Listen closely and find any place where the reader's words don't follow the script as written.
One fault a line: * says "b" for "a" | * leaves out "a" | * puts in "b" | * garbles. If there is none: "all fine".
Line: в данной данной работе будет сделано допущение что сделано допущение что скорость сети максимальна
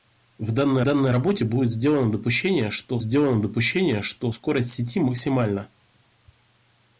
all fine